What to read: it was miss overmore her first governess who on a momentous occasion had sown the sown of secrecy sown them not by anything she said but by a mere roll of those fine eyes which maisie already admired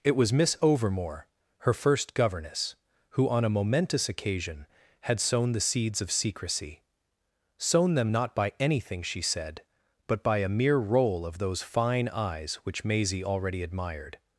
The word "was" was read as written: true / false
true